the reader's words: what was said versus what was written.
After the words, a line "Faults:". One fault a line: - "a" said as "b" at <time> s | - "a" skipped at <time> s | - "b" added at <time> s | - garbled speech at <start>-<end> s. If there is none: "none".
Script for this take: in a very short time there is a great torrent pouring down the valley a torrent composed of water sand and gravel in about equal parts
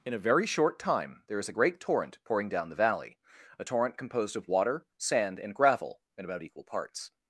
in a very short time there is a great torrent pouring down the valley a torrent composed of water sand and gravel in about equal parts
Faults:
none